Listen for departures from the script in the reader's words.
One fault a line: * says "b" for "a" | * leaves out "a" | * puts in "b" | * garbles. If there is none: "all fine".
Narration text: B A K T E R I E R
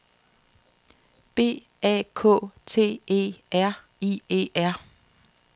all fine